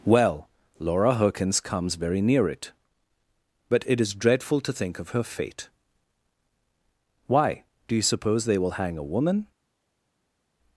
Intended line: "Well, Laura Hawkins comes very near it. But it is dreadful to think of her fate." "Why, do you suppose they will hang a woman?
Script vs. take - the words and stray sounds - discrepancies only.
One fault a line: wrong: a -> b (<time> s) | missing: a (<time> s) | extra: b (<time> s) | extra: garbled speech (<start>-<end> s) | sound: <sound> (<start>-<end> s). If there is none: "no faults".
no faults